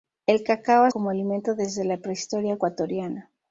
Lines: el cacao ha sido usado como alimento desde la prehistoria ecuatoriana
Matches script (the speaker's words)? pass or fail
fail